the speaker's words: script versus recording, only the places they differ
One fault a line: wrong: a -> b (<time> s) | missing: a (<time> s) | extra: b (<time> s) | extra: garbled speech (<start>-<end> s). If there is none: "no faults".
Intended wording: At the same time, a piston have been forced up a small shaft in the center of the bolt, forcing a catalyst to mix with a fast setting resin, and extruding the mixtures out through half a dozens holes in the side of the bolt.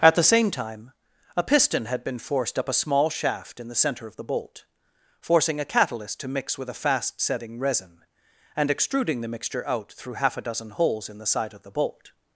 wrong: have -> had (1.9 s)
wrong: mixtures -> mixture (9.3 s)
wrong: dozens -> dozen (10.4 s)